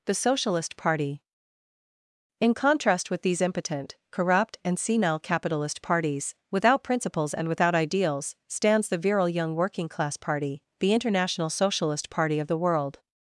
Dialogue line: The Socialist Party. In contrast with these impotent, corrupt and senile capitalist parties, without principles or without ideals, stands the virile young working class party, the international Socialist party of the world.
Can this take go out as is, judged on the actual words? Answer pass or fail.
fail